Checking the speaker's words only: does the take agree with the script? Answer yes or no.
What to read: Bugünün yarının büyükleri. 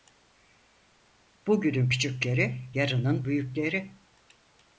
no